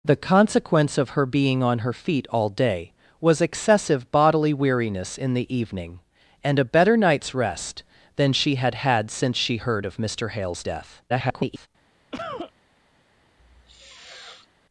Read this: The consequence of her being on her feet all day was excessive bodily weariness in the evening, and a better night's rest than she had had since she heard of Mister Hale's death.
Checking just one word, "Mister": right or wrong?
right